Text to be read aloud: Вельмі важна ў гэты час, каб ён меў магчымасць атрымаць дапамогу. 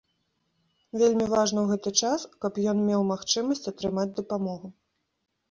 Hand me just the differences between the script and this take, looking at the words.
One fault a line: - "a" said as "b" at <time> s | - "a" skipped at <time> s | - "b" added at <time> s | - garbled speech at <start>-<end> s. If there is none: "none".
none